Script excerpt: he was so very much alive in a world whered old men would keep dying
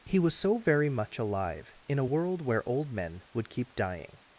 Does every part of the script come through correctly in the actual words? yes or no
no